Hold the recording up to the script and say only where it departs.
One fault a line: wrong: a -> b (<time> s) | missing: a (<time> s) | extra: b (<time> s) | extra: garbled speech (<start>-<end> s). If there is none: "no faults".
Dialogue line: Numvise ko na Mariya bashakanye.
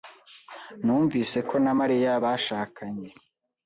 no faults